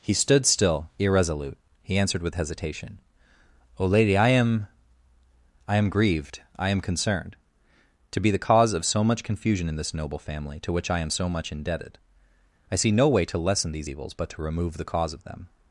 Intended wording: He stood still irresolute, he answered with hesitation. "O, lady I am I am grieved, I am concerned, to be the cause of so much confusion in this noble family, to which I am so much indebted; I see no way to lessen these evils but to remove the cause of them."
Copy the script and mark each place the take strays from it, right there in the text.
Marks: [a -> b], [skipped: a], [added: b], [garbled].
He stood still irresolute, he answered with hesitation. "O, lady I am I am grieved, I am concerned, to be the cause of so much confusion in this noble family, to which I am so much indebted; I see no way to lessen these evils but to remove the cause of them."